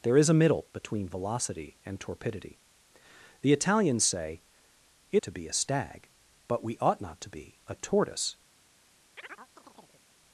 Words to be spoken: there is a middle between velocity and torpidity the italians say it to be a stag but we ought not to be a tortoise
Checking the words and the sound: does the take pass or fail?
fail